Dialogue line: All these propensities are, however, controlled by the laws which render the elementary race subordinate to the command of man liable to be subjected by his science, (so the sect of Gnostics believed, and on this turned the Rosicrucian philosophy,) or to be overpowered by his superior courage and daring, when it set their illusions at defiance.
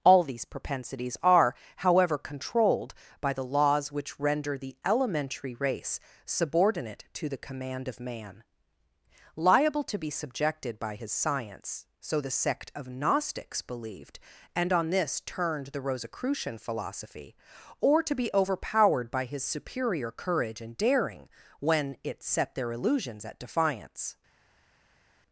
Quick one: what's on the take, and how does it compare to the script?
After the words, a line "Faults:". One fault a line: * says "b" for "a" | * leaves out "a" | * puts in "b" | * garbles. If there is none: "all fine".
All these propensities are, however, controlled by the laws which render the elementary race subordinate to the command of man liable to be subjected by his science, (so the sect of Gnostics believed, and on this turned the Rosicrucian philosophy,) or to be overpowered by his superior courage and daring, when it set their illusions at defiance.
Faults:
all fine